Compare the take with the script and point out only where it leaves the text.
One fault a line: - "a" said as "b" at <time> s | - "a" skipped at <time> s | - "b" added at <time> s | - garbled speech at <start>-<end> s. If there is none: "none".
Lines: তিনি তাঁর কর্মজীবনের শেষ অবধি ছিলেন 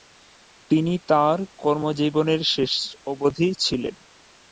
none